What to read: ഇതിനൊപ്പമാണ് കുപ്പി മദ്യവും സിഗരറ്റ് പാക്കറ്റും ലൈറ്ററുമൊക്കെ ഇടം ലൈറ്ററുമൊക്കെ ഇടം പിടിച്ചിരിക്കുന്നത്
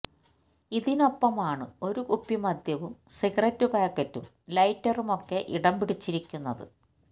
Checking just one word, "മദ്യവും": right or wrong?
right